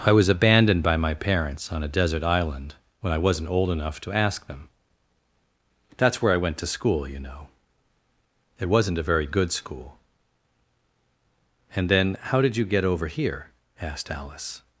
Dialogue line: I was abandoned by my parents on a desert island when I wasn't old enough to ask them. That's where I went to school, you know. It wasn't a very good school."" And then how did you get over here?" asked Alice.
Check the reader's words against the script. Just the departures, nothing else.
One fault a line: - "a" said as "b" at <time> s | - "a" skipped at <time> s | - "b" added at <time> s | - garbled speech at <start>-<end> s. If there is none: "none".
none